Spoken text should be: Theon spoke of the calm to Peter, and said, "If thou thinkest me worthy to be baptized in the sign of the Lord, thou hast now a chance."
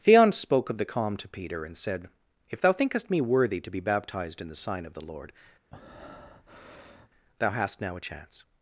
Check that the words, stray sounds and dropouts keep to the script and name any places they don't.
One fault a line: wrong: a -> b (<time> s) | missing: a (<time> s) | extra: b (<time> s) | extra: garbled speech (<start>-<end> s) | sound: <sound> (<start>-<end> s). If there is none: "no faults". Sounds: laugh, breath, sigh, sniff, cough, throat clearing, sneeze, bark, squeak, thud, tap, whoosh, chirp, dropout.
sound: breath (5.7-7.1 s)